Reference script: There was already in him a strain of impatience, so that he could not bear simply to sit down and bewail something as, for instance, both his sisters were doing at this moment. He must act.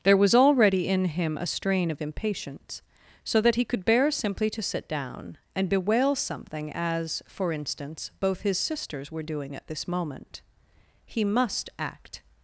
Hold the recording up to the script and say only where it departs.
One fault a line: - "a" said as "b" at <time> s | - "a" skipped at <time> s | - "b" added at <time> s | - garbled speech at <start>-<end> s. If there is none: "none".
- "not" skipped at 3.9 s